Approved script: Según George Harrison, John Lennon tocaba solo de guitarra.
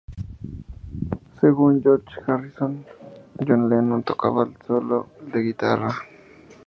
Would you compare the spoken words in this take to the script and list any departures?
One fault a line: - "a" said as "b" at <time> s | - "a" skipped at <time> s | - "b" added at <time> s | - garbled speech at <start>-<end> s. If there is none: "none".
- "el" added at 4.4 s